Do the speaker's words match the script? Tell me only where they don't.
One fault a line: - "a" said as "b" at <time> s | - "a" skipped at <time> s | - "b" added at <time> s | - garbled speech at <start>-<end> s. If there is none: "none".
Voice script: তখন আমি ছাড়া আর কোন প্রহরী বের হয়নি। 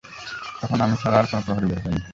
none